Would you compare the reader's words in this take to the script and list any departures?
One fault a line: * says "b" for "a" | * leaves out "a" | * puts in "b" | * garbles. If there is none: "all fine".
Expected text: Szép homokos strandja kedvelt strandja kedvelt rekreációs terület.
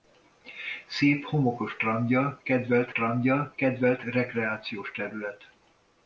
all fine